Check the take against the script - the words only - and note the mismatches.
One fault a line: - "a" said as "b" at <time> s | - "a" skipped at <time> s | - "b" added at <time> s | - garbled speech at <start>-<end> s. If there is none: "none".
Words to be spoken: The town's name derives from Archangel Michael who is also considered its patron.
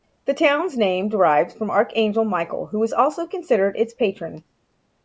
none